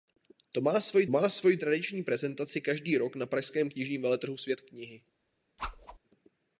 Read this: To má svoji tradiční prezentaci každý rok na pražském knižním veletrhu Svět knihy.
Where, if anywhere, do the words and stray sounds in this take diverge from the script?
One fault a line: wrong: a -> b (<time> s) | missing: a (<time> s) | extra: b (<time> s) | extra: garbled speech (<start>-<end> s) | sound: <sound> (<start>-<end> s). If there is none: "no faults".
extra: má svoji (1.1 s)
sound: whoosh (5.6-6.0 s)